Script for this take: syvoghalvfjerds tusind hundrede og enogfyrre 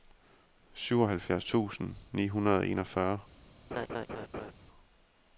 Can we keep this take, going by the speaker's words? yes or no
no